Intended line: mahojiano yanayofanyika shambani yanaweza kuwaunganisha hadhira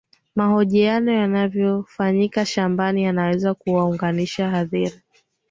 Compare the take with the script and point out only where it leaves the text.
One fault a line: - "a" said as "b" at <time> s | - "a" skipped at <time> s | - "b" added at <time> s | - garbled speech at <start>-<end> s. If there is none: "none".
none